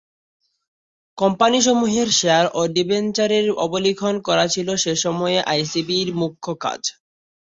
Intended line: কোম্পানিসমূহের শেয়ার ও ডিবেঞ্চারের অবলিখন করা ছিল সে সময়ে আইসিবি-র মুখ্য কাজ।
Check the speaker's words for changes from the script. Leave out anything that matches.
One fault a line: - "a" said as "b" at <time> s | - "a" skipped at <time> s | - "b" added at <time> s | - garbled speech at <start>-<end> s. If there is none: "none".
none